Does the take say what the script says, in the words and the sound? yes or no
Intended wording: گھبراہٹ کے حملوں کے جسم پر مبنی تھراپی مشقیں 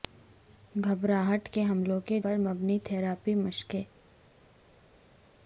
no